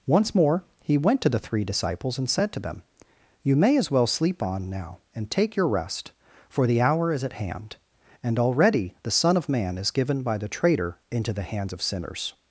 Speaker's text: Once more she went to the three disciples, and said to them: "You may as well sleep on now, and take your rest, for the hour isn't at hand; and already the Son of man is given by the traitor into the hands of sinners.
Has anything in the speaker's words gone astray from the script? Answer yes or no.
yes